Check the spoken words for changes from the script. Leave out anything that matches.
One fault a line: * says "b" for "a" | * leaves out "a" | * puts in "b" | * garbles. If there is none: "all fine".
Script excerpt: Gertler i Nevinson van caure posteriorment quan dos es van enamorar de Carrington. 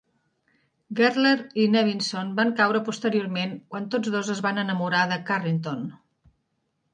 * puts in "tots"